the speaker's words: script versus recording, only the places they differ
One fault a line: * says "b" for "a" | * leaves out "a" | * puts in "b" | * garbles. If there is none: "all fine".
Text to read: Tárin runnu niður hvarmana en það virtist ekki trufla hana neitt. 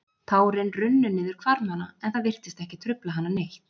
all fine